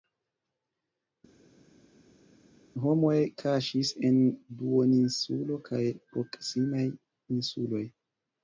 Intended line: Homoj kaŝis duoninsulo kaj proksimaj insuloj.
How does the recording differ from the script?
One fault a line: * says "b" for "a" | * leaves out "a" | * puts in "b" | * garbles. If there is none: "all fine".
* puts in "en"